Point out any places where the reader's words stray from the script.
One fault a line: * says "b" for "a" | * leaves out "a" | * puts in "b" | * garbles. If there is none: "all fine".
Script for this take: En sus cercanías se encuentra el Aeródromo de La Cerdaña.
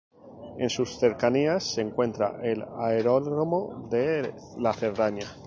all fine